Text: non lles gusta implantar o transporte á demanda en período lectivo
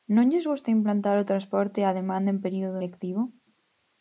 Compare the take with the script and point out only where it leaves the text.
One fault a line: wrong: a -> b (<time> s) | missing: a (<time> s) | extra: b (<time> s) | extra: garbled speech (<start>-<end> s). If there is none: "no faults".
no faults